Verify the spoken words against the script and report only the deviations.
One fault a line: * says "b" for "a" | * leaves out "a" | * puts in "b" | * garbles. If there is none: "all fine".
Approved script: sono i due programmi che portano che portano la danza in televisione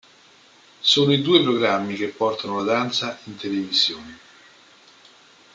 * leaves out "che portano"